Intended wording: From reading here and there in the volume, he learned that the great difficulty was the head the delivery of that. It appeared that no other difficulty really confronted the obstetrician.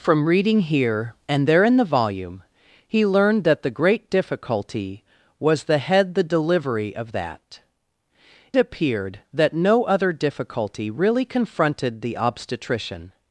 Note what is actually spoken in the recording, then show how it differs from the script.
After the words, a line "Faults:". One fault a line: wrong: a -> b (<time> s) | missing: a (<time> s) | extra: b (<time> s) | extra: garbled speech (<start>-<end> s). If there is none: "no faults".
From reading here and there in the volume, he learned that the great difficulty was the head the delivery of that. Appeared that no other difficulty really confronted the obstetrician.
Faults:
missing: It (7.6 s)